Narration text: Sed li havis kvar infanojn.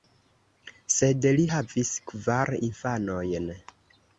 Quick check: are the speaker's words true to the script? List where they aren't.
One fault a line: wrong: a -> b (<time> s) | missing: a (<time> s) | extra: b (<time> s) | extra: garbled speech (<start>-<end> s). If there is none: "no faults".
no faults